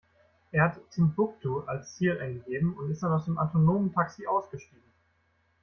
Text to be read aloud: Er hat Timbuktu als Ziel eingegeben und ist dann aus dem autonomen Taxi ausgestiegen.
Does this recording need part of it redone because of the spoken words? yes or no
no